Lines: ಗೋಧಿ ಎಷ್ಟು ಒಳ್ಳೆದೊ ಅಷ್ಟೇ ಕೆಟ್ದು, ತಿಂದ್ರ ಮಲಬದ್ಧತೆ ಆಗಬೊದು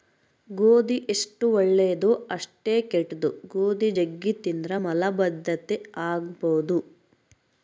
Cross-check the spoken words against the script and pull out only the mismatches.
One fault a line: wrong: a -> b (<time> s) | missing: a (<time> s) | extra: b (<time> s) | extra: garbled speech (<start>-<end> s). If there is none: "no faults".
extra: ಗೋಧಿ ಜಗ್ಗಿ (3.5 s)